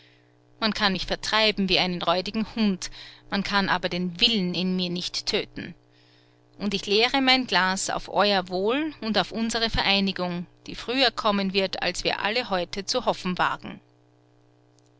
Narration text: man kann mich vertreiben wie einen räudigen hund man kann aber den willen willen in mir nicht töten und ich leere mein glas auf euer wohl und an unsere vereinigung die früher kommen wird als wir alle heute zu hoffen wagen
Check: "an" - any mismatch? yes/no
yes